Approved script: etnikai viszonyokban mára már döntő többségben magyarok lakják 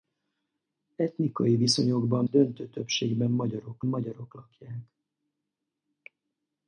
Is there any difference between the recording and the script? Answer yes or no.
yes